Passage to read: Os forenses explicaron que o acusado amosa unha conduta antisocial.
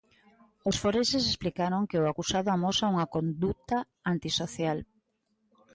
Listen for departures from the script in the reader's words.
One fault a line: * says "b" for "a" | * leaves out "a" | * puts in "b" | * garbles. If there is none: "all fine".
all fine